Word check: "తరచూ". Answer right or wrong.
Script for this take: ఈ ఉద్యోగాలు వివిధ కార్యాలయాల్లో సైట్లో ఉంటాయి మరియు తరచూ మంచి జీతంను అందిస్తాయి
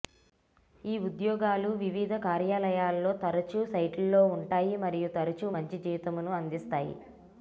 right